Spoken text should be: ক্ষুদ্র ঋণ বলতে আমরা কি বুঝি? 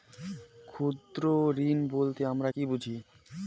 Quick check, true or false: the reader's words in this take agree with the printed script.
true